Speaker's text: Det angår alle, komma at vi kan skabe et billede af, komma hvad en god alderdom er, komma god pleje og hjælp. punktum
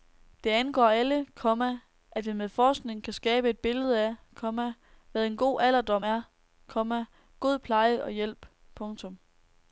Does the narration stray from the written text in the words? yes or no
yes